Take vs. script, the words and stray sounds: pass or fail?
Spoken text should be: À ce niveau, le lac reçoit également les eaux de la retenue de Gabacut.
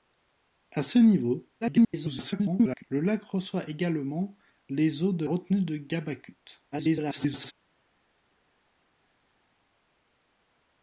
fail